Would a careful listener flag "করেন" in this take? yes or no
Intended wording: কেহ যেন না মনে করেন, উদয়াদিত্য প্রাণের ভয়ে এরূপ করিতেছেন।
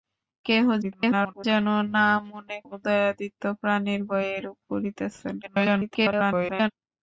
yes